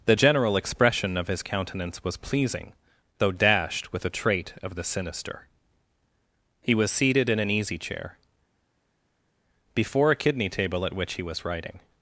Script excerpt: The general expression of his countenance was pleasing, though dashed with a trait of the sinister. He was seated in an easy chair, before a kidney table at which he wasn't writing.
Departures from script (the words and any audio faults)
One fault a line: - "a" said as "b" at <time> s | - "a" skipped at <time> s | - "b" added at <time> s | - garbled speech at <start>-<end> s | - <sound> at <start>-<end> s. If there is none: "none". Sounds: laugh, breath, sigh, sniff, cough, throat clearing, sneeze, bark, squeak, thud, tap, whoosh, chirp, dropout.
- "wasn't" said as "was" at 11.2 s